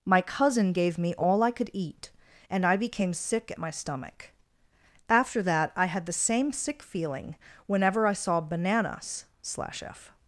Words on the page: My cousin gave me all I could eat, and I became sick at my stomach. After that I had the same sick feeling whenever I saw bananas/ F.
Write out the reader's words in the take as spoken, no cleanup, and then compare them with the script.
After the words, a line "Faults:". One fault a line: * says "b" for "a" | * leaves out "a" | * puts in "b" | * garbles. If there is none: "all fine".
My cousin gave me all I could eat, and I became sick at my stomach. After that I had the same sick feeling whenever I saw bananas/ slash F.
Faults:
* puts in "slash"